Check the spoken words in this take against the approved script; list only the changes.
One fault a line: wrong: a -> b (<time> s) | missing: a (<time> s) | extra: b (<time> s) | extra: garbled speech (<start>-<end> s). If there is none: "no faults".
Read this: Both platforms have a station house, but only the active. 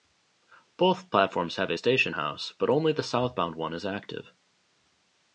extra: southbound one is (3.0 s)